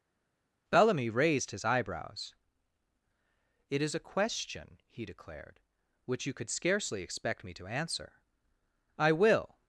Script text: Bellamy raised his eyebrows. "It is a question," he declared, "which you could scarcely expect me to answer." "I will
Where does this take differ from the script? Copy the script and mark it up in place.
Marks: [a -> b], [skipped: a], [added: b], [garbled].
Bellamy raised his eyebrows. "It is a question," he declared, "which you could scarcely expect me to answer." "I will